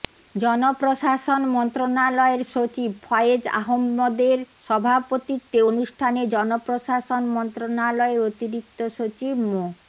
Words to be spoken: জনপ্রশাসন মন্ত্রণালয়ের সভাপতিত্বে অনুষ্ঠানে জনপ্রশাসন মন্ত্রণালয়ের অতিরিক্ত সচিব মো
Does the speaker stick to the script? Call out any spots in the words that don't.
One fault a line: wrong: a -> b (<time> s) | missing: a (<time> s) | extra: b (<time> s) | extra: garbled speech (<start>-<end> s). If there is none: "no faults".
extra: সচিব ফয়েজ আহম্মদের (2.5 s)